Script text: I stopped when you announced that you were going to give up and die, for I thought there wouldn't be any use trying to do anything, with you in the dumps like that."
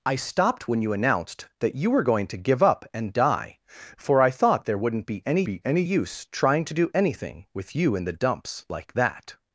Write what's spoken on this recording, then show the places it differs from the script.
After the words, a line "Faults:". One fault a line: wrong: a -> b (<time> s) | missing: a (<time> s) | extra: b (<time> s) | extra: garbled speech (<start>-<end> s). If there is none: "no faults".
I stopped when you announced that you were going to give up and die, for I thought there wouldn't be any be any use trying to do anything, with you in the dumps like that."
Faults:
extra: be any (5.4 s)